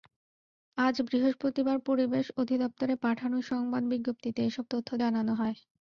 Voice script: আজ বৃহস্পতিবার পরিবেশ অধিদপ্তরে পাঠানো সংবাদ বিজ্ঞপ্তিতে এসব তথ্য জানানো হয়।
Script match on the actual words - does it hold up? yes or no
yes